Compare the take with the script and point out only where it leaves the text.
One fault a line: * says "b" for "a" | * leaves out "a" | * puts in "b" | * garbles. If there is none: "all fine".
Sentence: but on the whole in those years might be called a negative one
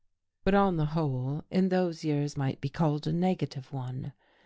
all fine